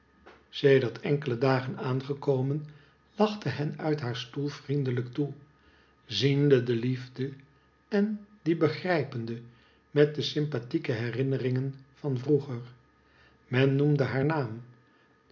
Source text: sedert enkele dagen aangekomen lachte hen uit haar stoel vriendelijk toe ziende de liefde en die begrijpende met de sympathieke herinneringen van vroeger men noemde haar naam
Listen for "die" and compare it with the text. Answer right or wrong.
right